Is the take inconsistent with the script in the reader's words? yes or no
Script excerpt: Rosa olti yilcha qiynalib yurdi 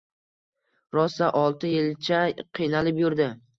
no